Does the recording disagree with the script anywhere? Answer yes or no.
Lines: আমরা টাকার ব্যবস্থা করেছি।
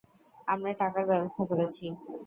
no